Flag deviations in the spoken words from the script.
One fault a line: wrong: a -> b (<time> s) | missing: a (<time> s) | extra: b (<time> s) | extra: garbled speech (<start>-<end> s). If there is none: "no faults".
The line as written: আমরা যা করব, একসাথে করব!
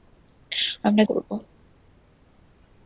missing: যা করব একসাথে (1.0 s)